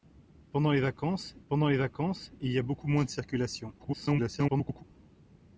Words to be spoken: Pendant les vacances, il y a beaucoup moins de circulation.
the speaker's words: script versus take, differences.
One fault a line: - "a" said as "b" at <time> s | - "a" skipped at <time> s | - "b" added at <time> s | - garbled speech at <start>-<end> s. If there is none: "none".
- "pendant les vacances" added at 1.5 s
- garbled speech at 3.8-4.8 s